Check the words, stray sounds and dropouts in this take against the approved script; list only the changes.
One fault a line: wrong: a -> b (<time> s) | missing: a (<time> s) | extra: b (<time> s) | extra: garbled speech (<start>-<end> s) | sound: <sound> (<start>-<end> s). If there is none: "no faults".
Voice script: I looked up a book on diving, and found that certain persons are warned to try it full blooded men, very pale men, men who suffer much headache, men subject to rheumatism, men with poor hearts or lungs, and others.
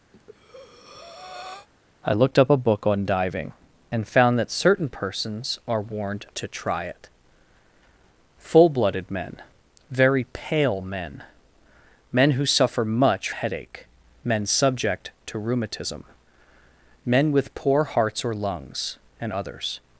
sound: breath (0.1-1.7 s)